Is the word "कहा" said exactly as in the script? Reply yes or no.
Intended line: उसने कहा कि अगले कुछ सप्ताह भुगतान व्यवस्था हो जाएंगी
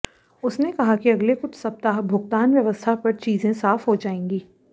yes